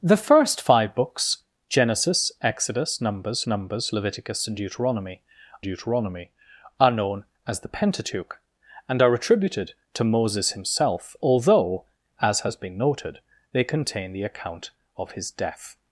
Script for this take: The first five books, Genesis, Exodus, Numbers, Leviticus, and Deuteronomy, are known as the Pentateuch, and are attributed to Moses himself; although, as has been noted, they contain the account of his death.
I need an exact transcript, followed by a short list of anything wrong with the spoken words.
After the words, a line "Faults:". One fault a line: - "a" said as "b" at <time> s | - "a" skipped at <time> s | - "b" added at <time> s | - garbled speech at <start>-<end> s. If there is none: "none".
The first five books, Genesis, Exodus, Numbers Numbers, Leviticus, and Deuteronomy Deuteronomy, are known as the Pentateuch, and are attributed to Moses himself; although, as has been noted, they contain the account of his death.
Faults:
- "Numbers" added at 3.5 s
- "Deuteronomy" added at 5.6 s